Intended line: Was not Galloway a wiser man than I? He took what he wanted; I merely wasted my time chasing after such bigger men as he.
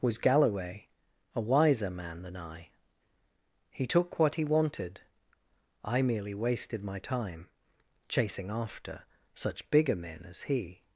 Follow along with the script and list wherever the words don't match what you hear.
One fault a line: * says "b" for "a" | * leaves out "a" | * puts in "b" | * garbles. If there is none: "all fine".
* leaves out "not"